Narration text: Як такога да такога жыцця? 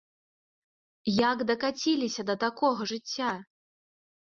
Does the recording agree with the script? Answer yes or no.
no